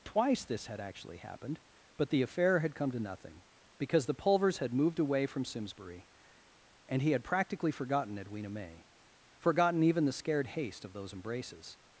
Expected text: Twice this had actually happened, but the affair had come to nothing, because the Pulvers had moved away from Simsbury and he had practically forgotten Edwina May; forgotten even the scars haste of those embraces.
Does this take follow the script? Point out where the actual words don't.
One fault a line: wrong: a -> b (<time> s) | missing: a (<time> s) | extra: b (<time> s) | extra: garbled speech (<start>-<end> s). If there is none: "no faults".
wrong: scars -> scared (10.1 s)